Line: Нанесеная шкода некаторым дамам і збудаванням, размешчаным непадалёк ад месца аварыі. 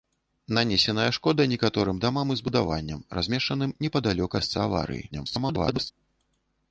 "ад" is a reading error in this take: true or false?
true